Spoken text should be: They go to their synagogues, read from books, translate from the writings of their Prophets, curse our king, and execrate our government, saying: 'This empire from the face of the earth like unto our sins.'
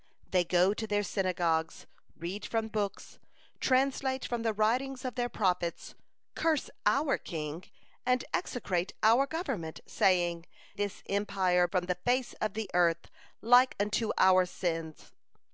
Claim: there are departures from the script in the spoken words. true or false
false